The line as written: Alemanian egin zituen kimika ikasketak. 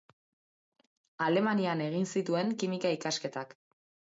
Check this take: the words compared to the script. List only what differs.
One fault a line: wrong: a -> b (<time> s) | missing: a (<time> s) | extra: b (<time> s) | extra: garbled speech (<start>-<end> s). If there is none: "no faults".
no faults